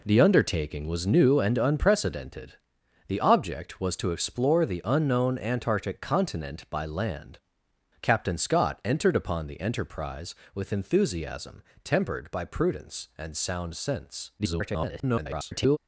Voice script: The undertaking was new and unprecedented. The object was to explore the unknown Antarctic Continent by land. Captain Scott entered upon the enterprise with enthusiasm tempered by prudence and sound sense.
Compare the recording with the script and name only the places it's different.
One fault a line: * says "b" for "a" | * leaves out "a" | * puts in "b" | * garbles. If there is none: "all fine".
* garbles